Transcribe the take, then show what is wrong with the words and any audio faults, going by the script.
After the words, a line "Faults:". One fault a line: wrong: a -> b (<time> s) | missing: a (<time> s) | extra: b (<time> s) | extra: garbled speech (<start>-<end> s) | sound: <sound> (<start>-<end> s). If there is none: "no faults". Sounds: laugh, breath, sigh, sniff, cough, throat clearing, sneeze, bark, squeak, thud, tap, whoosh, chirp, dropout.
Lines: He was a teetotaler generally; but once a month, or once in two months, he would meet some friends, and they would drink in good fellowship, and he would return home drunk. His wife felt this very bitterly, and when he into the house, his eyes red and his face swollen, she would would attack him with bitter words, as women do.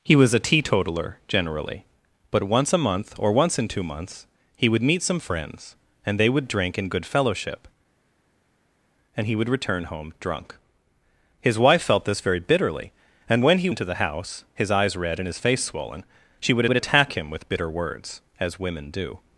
He was a teetotaler generally; but once a month, or once in two months, he would meet some friends, and they would drink in good fellowship, and he would return home drunk. His wife felt this very bitterly, and when he into the house, his eyes red and his face swollen, she would would attack him with bitter words, as women do.
Faults:
no faults